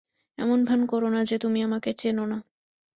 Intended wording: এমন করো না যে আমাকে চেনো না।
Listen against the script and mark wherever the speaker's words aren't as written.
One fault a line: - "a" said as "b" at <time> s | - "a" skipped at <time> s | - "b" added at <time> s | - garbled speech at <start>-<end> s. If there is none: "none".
- "ভান" added at 0.6 s
- "তুমি" added at 1.4 s